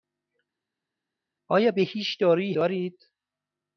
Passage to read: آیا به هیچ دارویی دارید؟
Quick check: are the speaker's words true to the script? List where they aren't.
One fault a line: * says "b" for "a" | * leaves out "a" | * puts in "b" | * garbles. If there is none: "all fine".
all fine